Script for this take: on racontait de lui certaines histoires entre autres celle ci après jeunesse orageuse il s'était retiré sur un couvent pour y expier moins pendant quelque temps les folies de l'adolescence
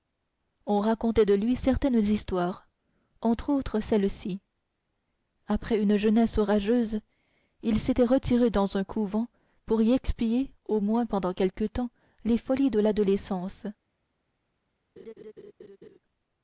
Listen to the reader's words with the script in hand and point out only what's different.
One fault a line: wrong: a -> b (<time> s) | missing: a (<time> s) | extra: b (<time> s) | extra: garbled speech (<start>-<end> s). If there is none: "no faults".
extra: une (5.8 s)
wrong: sur -> dans (8.5 s)
extra: au (10.7 s)